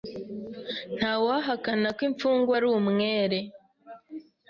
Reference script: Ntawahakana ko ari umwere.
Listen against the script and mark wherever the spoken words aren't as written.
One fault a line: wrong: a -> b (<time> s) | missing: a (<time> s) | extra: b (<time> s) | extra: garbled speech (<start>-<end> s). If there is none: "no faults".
extra: imfungwa (2.1 s)